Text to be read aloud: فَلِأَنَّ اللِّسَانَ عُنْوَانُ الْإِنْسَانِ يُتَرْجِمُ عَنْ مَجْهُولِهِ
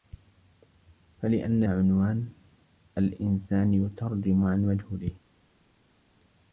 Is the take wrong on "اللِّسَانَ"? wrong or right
wrong